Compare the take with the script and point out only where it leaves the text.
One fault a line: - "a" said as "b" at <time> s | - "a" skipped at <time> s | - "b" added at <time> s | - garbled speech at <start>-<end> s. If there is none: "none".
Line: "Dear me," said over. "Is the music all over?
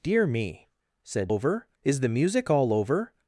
none